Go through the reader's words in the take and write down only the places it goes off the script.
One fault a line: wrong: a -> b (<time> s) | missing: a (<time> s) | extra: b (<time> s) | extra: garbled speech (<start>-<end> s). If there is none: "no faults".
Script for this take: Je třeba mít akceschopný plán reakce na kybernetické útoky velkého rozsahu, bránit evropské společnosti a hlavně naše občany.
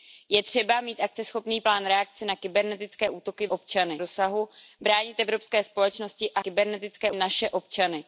wrong: velkého -> občany (3.5 s)
wrong: hlavně -> kybernetické (6.4 s)